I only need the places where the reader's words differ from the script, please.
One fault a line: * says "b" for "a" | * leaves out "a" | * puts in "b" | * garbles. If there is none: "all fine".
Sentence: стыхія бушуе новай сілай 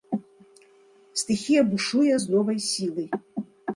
* puts in "з"